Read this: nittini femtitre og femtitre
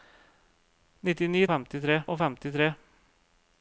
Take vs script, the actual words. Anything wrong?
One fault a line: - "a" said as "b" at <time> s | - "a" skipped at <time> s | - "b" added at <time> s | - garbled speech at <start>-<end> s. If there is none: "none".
none